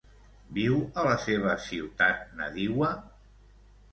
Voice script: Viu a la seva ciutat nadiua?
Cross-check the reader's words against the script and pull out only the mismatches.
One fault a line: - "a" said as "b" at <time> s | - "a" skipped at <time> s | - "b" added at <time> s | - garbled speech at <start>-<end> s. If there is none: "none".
none